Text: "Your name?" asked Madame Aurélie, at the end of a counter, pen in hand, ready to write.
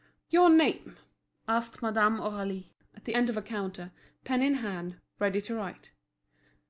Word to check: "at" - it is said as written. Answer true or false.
true